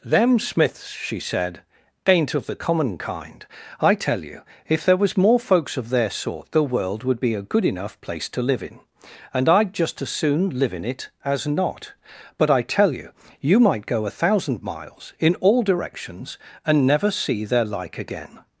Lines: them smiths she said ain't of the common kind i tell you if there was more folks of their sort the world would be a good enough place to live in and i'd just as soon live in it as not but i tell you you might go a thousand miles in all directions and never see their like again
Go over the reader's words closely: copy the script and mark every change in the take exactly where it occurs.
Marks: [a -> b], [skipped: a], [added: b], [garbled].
them smiths she said ain't of the common kind i tell you if there was more folks of their sort the world would be a good enough place to live in and i'd just as soon live in it as not but i tell you you might go a thousand miles in all directions and never see their like again